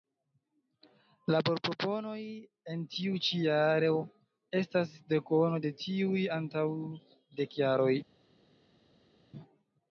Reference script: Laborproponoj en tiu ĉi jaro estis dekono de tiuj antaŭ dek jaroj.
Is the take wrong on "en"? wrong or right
right